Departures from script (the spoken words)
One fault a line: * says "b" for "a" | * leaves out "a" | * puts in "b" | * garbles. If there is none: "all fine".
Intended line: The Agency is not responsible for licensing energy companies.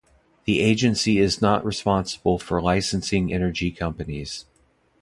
all fine